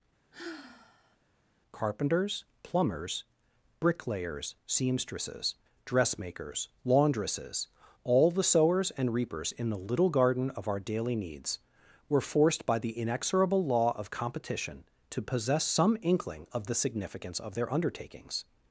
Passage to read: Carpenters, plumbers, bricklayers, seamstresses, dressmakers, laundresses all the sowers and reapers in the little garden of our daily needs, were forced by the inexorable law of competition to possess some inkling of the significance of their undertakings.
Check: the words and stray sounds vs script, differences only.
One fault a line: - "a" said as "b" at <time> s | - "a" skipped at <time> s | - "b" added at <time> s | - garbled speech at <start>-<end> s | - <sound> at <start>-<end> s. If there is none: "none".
- sigh at 0.3-1.2 s